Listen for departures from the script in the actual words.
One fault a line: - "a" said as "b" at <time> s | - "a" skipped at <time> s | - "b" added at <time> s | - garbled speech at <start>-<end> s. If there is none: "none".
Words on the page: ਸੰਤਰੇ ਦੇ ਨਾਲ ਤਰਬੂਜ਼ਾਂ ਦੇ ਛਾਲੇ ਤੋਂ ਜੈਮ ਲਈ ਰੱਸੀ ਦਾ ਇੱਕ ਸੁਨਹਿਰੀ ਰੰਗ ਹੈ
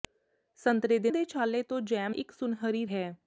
- "ਨਾਲ ਤਰਬੂਜ਼ਾਂ" skipped at 1.1 s
- "ਲਈ ਰੱਸੀ ਦਾ" skipped at 2.2 s
- "ਰੰਗ" skipped at 2.9 s